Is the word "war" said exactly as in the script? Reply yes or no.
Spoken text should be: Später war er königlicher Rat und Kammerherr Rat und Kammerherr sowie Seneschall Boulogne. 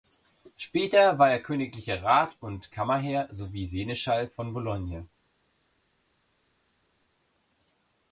yes